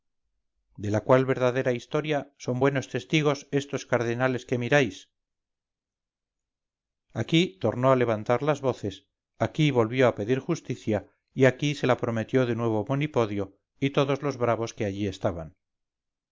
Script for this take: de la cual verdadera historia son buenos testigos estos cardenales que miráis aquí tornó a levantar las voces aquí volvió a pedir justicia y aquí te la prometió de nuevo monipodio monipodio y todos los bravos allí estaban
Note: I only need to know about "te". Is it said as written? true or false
false